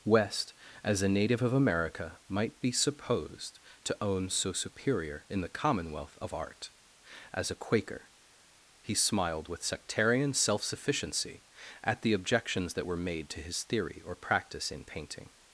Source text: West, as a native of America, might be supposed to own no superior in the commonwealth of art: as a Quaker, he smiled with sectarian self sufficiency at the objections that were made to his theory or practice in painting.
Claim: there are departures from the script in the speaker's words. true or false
true